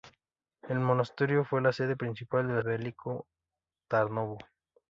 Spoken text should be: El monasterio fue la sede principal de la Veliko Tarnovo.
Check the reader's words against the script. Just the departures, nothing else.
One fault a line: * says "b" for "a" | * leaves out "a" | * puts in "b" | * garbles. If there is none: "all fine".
all fine